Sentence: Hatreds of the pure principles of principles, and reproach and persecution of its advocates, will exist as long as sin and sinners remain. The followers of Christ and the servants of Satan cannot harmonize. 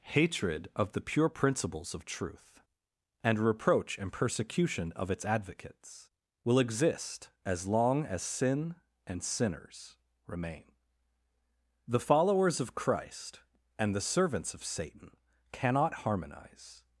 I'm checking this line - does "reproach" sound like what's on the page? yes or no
yes